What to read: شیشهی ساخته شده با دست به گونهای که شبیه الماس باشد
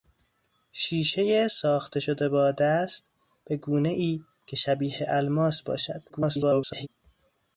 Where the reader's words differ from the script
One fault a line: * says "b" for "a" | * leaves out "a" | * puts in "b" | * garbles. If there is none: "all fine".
* garbles